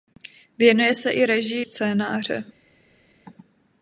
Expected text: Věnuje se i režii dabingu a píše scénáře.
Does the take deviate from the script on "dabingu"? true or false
true